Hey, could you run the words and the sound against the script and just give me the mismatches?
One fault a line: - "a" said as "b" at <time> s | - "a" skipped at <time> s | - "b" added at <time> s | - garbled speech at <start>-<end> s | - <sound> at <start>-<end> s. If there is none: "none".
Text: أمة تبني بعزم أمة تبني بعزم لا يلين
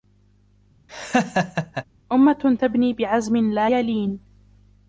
- laugh at 0.9-1.8 s
- "أمة تبني بعزم" skipped at 3.4 s